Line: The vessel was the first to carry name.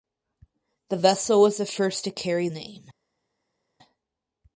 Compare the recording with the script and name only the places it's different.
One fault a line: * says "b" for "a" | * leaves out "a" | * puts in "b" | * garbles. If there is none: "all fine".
all fine